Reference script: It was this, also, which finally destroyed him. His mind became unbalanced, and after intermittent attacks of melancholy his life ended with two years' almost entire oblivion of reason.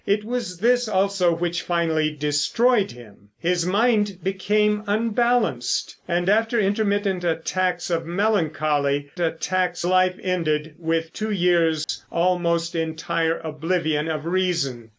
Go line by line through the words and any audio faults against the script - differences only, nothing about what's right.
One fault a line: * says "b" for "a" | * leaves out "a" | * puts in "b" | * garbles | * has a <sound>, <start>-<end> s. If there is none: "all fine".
* says "attacks" for "his"
* has a dropout, 11.8-11.9 s